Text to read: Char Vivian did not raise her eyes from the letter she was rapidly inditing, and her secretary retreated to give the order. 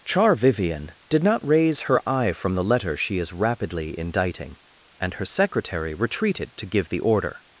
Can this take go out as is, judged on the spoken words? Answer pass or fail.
fail